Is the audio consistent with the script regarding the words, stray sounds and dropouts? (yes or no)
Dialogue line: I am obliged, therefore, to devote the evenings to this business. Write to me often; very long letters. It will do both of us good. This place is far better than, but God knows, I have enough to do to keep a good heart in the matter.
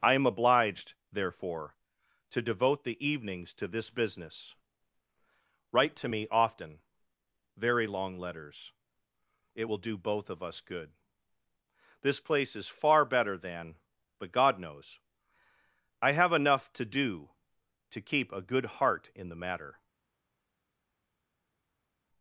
yes